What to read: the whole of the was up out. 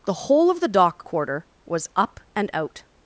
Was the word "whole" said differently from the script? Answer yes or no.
no